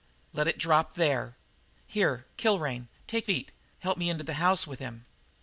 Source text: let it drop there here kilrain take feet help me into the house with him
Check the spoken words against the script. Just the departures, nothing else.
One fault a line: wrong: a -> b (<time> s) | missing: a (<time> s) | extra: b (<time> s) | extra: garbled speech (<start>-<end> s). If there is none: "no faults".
no faults